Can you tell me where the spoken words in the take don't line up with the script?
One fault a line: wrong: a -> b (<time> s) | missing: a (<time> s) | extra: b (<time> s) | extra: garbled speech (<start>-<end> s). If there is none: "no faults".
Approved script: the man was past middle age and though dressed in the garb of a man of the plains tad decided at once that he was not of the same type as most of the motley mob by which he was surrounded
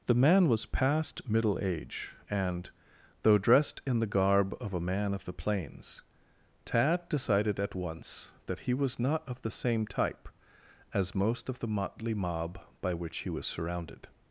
no faults